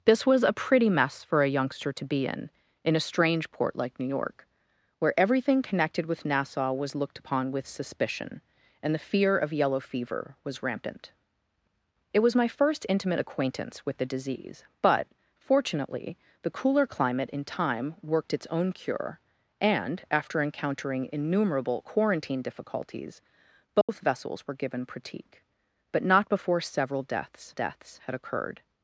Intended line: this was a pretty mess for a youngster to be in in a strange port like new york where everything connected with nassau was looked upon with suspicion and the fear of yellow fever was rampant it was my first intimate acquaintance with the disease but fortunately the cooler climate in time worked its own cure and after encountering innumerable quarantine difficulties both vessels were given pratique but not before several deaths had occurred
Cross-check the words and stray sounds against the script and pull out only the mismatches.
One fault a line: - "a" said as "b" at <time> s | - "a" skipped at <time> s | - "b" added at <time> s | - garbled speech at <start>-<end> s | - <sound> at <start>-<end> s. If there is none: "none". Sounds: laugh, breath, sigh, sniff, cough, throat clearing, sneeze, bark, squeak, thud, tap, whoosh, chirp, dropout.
- dropout at 23.8-23.9 s
- "deaths" added at 27.5 s